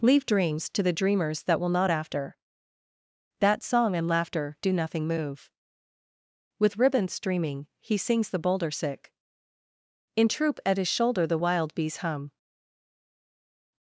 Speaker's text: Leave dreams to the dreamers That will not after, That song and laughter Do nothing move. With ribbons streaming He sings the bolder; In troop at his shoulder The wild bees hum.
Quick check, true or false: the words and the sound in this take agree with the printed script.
false